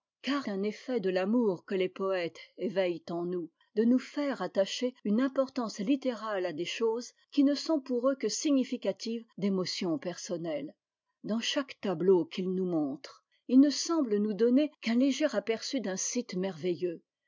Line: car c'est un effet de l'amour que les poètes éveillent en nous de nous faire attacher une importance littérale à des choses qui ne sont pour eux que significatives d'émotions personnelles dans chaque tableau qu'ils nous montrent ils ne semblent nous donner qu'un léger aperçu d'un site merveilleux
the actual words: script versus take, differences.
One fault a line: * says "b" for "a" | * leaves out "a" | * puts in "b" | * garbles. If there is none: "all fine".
* leaves out "c'est"